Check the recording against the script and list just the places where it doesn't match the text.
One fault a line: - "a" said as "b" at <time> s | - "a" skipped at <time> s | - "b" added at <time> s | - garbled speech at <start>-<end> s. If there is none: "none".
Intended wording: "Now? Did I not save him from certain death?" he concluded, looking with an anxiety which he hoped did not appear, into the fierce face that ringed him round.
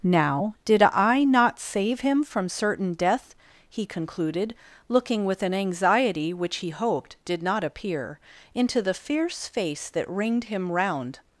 none